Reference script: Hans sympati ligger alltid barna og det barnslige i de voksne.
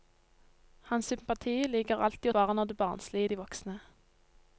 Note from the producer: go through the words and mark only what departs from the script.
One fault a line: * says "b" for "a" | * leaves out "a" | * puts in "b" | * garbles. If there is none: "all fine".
all fine